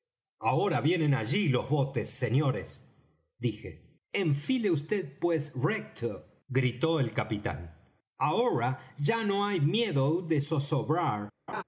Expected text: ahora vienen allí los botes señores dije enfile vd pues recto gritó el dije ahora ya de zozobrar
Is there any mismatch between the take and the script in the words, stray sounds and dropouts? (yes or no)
yes